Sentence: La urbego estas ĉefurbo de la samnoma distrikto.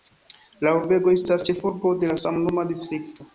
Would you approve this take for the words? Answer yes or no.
yes